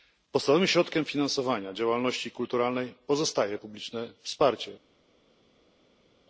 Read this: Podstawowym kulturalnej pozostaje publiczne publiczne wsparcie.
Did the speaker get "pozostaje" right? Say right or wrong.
right